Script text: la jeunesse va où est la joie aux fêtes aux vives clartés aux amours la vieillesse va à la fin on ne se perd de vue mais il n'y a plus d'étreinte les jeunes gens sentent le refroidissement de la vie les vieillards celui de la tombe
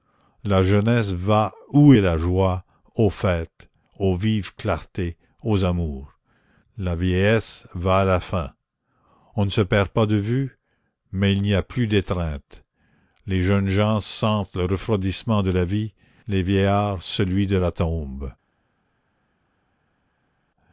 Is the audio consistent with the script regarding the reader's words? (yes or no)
no